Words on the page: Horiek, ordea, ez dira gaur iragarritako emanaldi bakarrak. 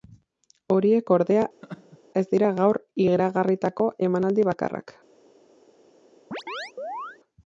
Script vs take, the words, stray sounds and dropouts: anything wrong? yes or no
yes